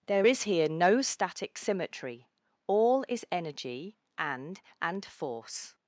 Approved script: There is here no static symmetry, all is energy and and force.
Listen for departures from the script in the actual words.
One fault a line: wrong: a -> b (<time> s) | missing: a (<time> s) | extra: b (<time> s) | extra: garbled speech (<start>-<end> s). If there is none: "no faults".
no faults